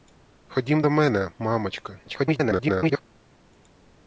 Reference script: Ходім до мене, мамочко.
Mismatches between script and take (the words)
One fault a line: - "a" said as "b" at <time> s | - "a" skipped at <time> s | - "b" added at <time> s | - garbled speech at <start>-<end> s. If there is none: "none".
- garbled speech at 2.1-3.0 s